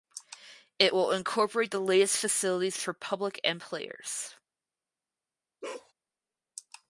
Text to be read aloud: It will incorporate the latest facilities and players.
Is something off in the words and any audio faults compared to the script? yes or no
yes